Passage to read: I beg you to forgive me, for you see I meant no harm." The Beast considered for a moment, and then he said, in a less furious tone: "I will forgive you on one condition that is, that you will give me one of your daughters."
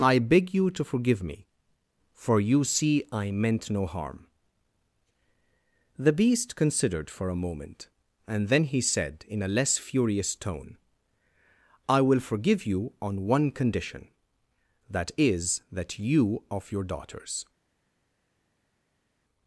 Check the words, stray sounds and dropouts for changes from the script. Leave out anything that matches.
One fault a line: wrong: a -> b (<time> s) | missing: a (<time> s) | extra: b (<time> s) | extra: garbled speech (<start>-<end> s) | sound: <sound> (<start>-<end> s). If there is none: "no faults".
missing: will give me one (16.5 s)